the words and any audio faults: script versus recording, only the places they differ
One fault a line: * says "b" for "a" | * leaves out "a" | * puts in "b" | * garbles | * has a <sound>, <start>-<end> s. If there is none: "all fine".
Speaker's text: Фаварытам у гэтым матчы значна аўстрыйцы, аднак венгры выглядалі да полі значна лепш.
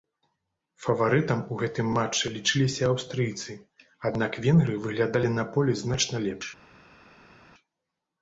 * says "лічыліся" for "значна"
* says "на" for "да"